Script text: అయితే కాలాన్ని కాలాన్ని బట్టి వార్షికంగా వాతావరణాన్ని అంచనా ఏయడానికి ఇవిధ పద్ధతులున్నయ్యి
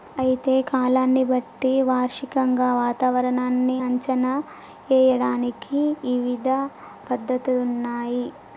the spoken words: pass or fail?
fail